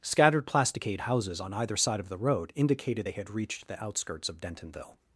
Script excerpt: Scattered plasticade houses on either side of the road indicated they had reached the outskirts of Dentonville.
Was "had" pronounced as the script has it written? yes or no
yes